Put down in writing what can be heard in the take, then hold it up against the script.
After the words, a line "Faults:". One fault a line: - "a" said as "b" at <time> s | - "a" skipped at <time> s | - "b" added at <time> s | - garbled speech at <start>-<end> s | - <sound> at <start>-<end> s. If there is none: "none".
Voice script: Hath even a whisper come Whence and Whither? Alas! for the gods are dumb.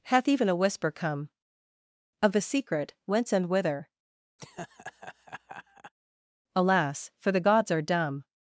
Hath even a whisper come Of the secret, Whence and Whither? Alas! for the gods are dumb.
Faults:
- "Of the secret" added at 2.2 s
- laugh at 4.4-5.9 s